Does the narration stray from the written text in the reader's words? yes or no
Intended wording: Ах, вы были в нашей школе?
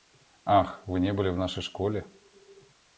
yes